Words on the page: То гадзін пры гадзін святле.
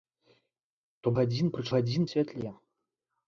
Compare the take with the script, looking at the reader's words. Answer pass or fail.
pass